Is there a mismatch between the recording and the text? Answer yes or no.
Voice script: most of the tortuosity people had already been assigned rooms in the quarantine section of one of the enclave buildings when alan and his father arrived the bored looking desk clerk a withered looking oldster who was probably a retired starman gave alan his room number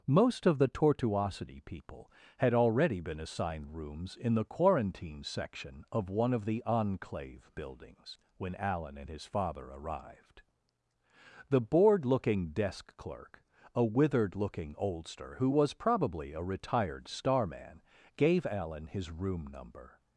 no